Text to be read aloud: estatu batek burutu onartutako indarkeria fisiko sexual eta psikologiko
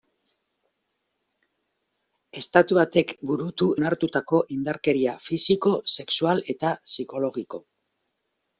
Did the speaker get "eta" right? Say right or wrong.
right